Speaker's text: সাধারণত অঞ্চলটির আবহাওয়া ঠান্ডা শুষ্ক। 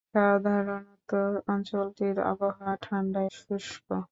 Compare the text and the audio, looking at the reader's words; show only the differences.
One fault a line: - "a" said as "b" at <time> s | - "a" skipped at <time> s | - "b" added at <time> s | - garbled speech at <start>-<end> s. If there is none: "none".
none